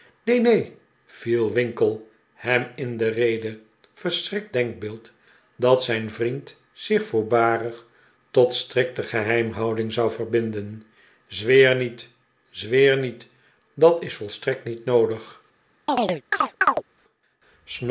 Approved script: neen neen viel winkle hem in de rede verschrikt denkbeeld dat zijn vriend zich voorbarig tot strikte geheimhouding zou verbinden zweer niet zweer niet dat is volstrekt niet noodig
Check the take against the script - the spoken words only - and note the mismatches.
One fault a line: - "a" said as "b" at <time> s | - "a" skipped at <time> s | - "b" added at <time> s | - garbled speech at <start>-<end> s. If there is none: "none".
none